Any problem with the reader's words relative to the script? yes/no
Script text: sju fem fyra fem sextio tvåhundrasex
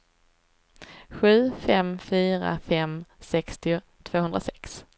no